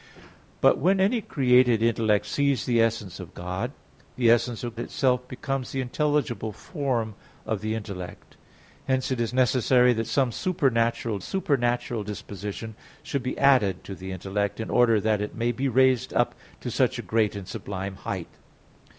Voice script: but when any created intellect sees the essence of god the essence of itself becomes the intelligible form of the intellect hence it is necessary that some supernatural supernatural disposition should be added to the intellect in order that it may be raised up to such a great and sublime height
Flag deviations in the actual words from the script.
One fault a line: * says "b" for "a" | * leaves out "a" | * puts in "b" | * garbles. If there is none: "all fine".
all fine